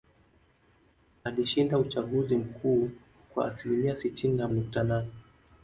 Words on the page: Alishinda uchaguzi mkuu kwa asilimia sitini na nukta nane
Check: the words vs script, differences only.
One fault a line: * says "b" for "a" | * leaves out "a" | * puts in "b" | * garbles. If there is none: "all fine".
all fine